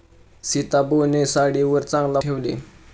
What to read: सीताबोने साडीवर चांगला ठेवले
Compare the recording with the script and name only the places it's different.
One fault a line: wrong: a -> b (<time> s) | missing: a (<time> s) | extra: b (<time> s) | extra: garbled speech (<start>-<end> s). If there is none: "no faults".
no faults